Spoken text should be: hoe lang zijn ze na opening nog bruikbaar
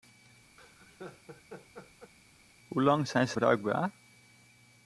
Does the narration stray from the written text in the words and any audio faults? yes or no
yes